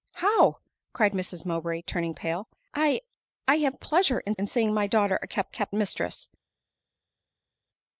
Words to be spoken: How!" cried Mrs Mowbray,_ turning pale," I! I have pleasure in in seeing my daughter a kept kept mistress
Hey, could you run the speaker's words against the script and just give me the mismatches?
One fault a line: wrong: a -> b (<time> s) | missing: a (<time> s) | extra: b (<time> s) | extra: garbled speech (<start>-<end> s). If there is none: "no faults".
no faults